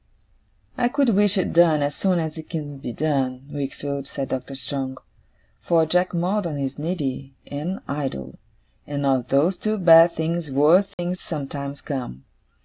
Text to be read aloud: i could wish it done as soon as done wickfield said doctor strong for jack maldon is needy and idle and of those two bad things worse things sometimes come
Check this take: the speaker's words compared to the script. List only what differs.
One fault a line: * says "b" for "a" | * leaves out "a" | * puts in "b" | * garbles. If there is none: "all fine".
* puts in "it can be"